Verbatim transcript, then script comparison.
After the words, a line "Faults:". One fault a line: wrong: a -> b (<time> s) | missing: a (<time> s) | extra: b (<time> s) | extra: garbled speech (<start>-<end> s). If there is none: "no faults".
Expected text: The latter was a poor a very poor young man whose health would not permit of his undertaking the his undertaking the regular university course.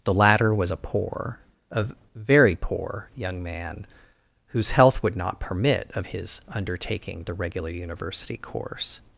The latter was a poor a very poor young man whose health would not permit of his undertaking the regular university course.
Faults:
missing: his undertaking the (7.3 s)